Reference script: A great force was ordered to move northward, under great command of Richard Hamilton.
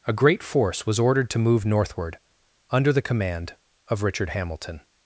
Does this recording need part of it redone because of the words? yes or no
yes